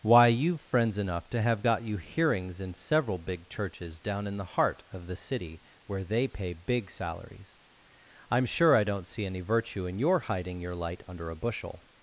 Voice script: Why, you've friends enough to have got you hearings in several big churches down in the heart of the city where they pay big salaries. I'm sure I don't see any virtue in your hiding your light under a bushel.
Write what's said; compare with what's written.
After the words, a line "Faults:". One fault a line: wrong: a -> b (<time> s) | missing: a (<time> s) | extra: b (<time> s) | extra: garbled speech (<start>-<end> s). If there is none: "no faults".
Why, you've friends enough to have got you hearings in several big churches down in the heart of the city where they pay big salaries. I'm sure I don't see any virtue in your hiding your light under a bushel.
Faults:
no faults